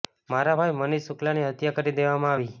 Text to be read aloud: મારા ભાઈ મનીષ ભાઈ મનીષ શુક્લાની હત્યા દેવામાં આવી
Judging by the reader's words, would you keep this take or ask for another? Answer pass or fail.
fail